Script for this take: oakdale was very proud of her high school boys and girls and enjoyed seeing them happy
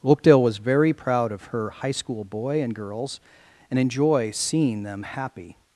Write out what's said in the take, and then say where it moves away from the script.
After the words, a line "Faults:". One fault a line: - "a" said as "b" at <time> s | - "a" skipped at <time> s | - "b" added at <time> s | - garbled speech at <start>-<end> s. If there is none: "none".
oakdale was very proud of her high school boy and girls and enjoy seeing them happy
Faults:
- "boys" said as "boy" at 2.2 s
- "enjoyed" said as "enjoy" at 3.8 s